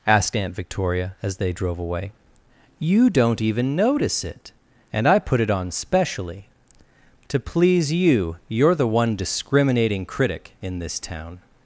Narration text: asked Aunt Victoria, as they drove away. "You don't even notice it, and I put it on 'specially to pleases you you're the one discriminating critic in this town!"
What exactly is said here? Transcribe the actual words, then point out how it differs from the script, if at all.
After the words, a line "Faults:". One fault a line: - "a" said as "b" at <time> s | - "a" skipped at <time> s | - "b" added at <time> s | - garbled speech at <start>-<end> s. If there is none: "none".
asked Aunt Victoria, as they drove away. "You don't even notice it, and I put it on 'specially to please you you're the one discriminating critic in this town!"
Faults:
- "pleases" said as "please" at 7.4 s